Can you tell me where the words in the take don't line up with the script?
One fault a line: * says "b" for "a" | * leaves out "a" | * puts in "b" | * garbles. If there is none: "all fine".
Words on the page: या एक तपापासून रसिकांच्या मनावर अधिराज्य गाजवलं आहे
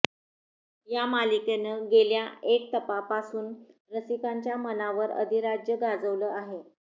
* puts in "मालिकेनं गेल्या"